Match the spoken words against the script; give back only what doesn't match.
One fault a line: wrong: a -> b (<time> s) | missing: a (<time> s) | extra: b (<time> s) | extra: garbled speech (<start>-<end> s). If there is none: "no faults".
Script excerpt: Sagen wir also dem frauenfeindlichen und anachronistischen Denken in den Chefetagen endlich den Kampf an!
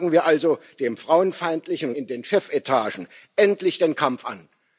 missing: und anachronistischen Denken (1.9 s)